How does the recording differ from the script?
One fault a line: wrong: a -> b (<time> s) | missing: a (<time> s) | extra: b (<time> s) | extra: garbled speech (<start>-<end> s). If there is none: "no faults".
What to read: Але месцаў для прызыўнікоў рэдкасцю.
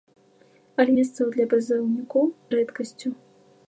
no faults